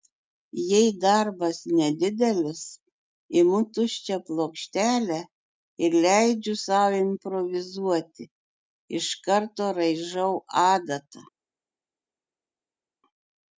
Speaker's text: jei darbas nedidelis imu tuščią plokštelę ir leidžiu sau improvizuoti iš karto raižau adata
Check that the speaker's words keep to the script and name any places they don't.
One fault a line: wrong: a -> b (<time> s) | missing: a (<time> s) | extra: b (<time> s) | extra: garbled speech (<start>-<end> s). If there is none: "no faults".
no faults